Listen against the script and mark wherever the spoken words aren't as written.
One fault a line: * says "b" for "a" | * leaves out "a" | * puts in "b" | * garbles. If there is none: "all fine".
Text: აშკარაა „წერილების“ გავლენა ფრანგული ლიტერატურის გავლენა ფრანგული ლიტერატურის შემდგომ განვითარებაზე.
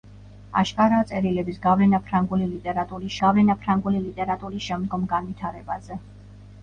all fine